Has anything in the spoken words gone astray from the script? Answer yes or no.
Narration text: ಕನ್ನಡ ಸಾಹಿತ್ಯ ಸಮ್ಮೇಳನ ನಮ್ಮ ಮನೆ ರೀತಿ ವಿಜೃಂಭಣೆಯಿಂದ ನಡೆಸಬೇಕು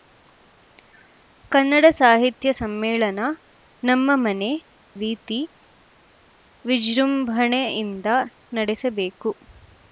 no